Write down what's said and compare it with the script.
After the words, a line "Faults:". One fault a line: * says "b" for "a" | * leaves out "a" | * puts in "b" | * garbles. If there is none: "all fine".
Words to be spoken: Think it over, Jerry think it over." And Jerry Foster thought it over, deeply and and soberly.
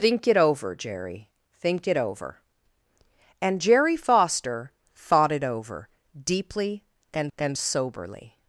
Think it over, Jerry think it over." And Jerry Foster thought it over, deeply and and soberly.
Faults:
all fine